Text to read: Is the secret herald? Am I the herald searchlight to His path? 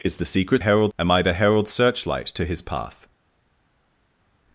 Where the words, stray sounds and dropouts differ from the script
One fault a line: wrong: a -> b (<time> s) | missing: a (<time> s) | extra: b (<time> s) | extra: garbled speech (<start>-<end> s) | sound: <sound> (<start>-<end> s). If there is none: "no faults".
no faults